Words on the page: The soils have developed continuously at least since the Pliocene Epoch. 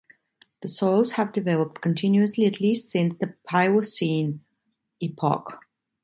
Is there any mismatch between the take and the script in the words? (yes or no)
no